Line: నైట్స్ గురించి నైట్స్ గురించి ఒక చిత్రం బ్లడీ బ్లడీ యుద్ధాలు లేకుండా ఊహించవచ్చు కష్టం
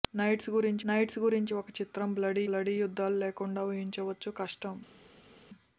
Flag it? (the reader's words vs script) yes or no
no